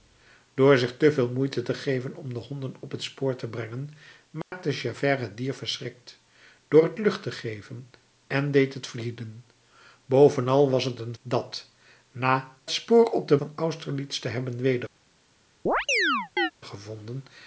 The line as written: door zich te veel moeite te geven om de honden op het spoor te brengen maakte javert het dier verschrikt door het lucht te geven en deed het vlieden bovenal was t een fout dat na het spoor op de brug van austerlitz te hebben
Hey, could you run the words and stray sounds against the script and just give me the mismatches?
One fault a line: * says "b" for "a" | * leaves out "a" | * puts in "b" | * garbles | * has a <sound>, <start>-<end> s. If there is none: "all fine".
* has a dropout, 4.4-4.5 s
* leaves out "fout"
* leaves out "het"
* leaves out "brug"
* has a chirp, 15.7-16.5 s